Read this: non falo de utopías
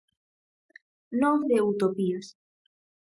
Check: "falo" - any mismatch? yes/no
yes